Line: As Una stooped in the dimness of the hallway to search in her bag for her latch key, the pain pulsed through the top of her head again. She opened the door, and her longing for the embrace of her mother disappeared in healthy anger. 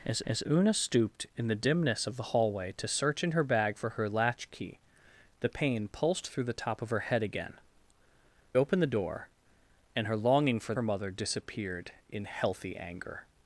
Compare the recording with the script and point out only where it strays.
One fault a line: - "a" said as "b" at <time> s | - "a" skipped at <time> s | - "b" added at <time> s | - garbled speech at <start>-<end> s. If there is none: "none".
- "as" added at 0.2 s
- "She" skipped at 7.6 s
- "the embrace of" skipped at 10.7 s